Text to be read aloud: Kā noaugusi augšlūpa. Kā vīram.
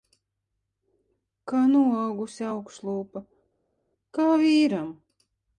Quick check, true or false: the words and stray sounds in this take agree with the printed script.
true